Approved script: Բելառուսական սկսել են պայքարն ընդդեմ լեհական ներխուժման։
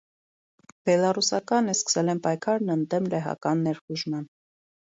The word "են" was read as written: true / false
true